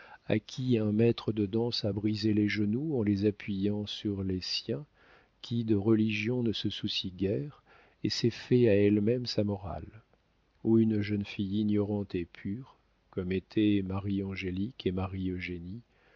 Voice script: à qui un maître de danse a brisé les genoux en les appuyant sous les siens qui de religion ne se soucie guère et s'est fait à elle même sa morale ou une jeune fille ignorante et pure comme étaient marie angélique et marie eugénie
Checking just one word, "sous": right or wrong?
wrong